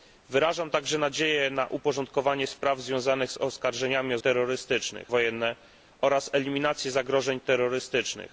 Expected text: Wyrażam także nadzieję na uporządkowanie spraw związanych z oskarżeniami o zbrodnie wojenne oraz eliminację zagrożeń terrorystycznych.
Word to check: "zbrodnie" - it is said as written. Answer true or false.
false